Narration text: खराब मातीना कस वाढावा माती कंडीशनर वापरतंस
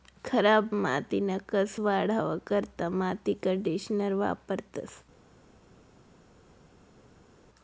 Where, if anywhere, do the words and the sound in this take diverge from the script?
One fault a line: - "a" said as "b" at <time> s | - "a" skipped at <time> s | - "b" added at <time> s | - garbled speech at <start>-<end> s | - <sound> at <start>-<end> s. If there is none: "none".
- "करता" added at 2.5 s